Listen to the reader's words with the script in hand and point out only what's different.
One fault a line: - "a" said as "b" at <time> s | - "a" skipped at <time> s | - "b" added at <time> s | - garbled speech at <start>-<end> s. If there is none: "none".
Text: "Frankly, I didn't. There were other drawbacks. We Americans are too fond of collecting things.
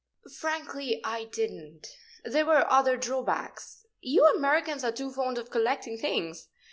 - "We" said as "You" at 4.0 s